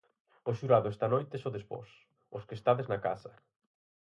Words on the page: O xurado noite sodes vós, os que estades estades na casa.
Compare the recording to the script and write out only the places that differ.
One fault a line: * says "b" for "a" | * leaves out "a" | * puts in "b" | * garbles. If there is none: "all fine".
* puts in "esta"
* leaves out "estades"